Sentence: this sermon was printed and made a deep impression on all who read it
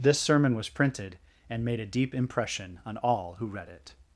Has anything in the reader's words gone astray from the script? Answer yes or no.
no